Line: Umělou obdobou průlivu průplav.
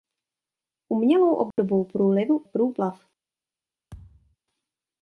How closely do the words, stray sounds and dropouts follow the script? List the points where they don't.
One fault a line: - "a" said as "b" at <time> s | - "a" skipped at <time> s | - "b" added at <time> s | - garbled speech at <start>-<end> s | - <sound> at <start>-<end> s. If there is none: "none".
- dropout at 1.5-1.6 s
- thud at 3.9-4.4 s